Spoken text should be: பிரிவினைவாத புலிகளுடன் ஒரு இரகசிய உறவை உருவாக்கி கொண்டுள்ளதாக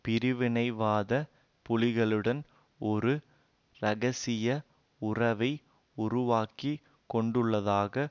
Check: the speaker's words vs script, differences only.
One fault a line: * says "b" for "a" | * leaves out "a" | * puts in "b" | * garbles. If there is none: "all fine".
all fine